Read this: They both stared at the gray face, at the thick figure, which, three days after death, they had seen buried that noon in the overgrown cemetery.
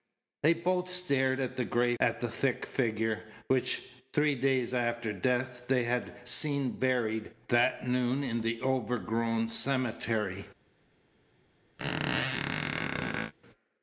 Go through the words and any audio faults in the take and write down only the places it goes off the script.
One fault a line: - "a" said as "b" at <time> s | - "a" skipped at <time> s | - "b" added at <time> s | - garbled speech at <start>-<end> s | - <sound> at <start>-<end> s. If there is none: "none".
- "face" skipped at 1.9 s
- squeak at 11.8-13.3 s